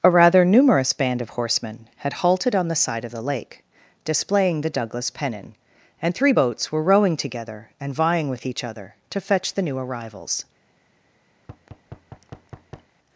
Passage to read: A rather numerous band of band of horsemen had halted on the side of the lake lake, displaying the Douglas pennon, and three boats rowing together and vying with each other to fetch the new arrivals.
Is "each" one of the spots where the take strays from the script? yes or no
no